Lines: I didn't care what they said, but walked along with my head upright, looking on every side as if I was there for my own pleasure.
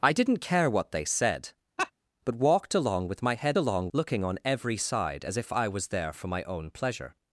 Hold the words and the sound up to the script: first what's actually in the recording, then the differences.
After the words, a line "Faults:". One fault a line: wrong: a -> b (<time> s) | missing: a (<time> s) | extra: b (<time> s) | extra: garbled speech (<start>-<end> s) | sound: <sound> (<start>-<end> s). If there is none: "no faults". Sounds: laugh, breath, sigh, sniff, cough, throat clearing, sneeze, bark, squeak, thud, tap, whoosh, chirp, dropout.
I didn't care what they said, but walked along with my head along, looking on every side as if I was there for my own pleasure.
Faults:
sound: laugh (1.8-1.9 s)
wrong: upright -> along (3.6 s)